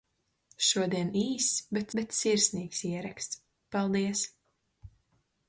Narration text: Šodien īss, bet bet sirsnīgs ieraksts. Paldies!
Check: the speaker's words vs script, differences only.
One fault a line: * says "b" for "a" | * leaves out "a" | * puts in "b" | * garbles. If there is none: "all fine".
all fine